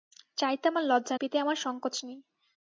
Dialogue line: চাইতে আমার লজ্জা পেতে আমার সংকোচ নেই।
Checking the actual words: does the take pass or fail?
pass